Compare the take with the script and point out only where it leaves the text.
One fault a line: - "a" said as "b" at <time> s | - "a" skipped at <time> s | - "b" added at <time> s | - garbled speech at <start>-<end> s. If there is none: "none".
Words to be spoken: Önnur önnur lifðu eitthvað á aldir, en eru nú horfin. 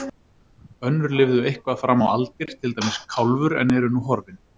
- "önnur" skipped at 1.1 s
- "fram" added at 1.8 s
- "til dæmis Kálfur" added at 2.6 s